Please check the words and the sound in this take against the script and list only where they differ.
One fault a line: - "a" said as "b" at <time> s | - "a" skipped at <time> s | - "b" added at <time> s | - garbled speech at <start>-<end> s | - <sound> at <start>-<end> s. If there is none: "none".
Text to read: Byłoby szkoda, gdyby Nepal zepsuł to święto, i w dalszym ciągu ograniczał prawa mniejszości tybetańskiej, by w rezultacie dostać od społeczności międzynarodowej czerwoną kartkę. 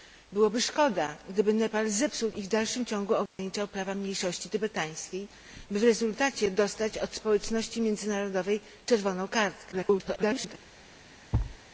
- "to święto" skipped at 2.3 s
- dropout at 3.3-3.4 s
- garbled speech at 9.7-10.5 s
- thud at 11.3-11.6 s